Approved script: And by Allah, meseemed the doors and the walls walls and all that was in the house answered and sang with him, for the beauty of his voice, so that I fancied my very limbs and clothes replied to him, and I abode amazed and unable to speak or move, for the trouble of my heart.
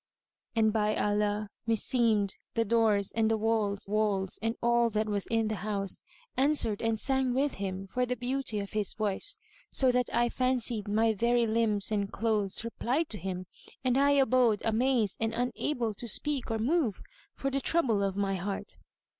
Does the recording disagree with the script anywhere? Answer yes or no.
no